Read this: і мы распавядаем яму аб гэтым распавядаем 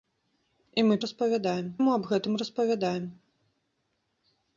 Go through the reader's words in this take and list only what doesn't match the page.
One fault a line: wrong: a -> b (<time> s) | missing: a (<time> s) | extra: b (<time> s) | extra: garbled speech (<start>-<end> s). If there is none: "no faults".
no faults